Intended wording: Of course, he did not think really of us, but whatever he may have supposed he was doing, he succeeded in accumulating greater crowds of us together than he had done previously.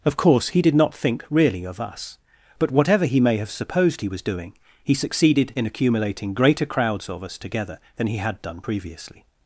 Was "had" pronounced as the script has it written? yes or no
yes